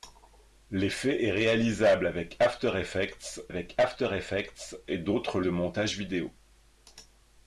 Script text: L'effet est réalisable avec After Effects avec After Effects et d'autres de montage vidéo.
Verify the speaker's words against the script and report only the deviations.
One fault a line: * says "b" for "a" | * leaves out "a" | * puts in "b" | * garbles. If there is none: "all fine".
all fine